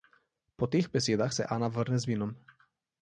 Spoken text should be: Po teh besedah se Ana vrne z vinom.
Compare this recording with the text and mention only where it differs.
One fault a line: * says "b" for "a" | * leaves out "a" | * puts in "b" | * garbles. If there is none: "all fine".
all fine